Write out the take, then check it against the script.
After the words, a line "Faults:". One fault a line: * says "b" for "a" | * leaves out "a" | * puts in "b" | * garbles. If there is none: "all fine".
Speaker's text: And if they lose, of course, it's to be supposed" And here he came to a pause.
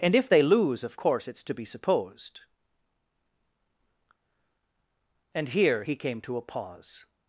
And if they lose, of course, it's to be supposed" And here he came to a pause.
Faults:
all fine